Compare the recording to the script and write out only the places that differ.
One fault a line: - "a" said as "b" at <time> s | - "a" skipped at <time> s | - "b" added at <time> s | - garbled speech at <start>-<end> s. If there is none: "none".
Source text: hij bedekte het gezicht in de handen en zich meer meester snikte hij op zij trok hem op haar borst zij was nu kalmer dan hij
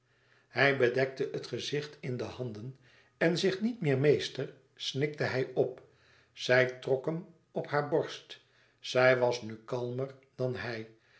- "niet" added at 3.6 s